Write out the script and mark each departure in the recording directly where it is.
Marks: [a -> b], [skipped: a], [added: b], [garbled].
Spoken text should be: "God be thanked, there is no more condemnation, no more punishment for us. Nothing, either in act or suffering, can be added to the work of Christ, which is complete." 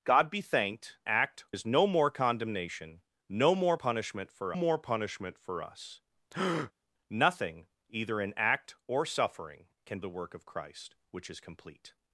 "God be thanked, [there -> act] is no more condemnation, no more punishment for [added: more punishment for] us. Nothing, either in act or suffering, can [skipped: be added to] the work of Christ, which is complete."